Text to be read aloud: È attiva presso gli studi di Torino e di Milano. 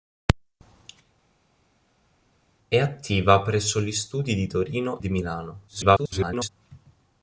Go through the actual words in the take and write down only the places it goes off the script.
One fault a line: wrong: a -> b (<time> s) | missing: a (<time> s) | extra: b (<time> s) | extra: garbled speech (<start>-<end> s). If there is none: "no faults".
missing: e (5.0 s)
extra: garbled speech (5.7-6.5 s)